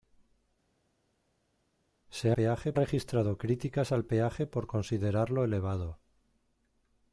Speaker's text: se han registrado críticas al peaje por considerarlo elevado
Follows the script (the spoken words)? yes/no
no